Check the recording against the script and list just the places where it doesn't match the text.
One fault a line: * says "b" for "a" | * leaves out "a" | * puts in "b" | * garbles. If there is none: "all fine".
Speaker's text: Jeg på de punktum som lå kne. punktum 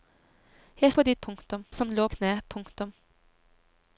all fine